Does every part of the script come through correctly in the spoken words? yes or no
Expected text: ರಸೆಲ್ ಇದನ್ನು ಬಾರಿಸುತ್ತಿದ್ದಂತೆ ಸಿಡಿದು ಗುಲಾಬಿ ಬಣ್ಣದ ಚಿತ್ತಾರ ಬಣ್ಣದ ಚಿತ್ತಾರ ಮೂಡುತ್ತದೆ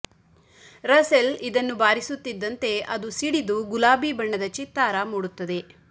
no